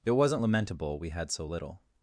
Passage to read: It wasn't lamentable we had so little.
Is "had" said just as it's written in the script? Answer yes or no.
yes